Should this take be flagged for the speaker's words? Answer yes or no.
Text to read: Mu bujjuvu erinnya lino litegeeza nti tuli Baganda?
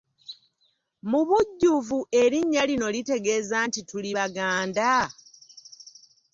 no